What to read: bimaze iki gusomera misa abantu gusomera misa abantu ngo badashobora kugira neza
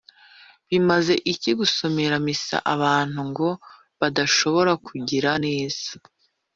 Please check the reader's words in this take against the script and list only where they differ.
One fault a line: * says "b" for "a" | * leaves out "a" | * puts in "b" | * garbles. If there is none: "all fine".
* leaves out "gusomera misa abantu"